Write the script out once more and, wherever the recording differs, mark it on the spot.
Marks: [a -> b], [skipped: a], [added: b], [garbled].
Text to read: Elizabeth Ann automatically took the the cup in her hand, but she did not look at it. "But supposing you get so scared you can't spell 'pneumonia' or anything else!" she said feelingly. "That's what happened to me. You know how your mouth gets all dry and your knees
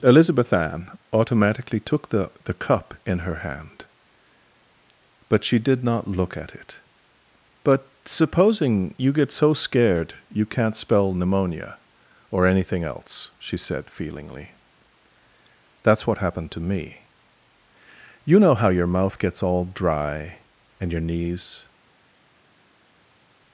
Elizabeth Ann automatically took the the cup in her hand, but she did not look at it. "But supposing you get so scared you can't spell 'pneumonia' or anything else!" she said feelingly. "That's what happened to me. You know how your mouth gets all dry and your knees